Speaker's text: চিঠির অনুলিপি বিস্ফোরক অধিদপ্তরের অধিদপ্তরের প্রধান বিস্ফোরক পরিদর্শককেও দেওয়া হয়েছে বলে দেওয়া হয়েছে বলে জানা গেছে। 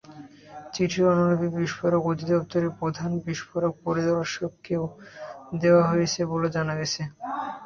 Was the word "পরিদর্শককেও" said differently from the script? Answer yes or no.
no